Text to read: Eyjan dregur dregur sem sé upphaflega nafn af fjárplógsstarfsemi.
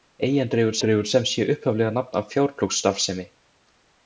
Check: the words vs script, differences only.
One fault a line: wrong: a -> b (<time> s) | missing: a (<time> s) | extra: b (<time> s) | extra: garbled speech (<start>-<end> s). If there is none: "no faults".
no faults